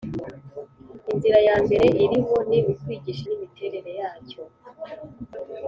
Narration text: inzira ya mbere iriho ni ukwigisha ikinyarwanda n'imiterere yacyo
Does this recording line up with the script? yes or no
no